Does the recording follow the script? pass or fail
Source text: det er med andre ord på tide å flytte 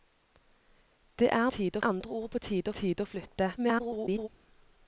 fail